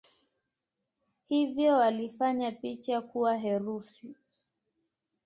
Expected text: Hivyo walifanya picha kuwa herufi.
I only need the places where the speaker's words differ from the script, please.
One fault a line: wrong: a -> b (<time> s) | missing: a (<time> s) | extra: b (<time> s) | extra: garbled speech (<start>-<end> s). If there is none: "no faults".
no faults